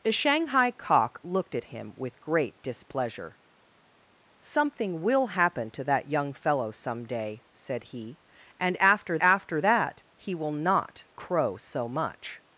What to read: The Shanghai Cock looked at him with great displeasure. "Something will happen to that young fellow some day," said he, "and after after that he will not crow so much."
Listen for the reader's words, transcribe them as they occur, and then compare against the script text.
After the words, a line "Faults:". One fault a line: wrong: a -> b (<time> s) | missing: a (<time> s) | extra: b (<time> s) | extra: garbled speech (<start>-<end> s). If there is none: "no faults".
The Shanghai Cock looked at him with great displeasure. "Something will happen to that young fellow some day," said he, "and after after that he will not crow so much."
Faults:
no faults